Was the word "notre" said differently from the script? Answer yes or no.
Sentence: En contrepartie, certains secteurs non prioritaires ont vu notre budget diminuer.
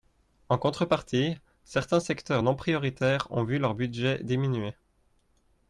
yes